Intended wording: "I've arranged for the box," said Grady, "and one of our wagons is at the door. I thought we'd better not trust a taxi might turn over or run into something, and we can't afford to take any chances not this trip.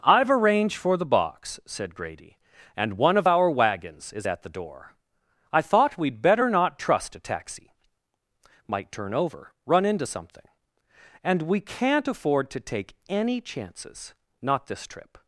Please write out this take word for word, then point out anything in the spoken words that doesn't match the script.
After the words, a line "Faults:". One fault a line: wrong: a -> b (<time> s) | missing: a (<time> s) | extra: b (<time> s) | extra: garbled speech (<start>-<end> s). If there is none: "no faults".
"I've arranged for the box," said Grady, "and one of our wagons is at the door. I thought we'd better not trust a taxi might turn over run into something, and we can't afford to take any chances not this trip.
Faults:
missing: or (9.5 s)